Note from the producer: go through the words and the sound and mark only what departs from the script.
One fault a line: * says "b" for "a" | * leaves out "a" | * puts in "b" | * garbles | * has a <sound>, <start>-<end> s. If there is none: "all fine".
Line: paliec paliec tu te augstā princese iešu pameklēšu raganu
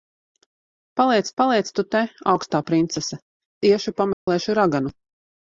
* has a dropout, 4.1-4.3 s